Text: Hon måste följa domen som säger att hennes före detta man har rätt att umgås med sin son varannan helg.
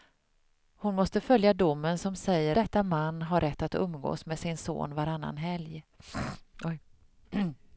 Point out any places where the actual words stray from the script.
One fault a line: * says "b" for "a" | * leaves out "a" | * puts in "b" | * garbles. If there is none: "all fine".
* leaves out "att hennes före"